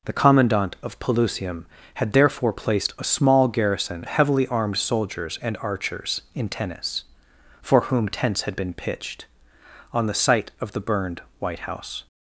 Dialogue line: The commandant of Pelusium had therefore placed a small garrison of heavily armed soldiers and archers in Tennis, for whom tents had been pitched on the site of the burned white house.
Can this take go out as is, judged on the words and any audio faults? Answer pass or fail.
fail